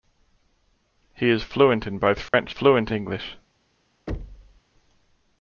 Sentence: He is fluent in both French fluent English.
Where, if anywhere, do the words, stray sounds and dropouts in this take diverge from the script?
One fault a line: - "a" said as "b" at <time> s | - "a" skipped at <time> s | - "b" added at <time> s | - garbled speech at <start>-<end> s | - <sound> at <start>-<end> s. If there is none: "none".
- dropout at 2.3-2.3 s
- thud at 4.1-4.6 s